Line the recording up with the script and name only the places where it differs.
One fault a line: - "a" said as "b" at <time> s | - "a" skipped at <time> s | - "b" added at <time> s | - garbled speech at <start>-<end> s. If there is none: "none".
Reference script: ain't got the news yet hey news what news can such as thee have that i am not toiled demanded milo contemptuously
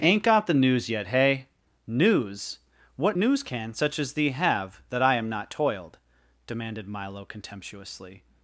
none